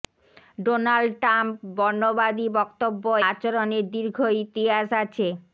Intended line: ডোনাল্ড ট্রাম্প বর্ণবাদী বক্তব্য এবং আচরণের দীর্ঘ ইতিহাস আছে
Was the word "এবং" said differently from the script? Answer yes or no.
yes